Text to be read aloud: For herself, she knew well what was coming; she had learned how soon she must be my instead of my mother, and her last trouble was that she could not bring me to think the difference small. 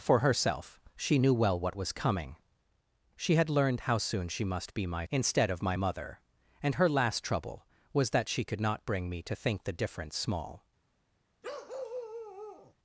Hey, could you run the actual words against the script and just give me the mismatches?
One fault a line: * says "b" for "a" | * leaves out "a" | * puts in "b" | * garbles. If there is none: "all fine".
all fine